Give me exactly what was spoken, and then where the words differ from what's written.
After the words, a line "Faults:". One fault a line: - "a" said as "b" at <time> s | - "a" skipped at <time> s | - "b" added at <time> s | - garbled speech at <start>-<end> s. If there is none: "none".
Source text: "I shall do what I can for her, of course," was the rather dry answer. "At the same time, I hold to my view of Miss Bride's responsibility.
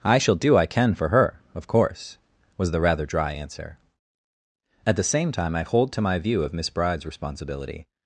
"I shall do I can for her, of course," was the rather dry answer. "At the same time, I hold to my view of Miss Bride's responsibility.
Faults:
- "what" skipped at 0.6 s